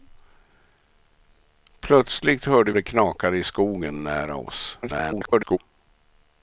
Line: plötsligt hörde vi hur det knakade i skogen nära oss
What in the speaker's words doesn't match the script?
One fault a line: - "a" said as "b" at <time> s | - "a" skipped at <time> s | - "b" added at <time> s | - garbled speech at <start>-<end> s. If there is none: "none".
- "vi hur" skipped at 2.7 s
- garbled speech at 4.8-5.6 s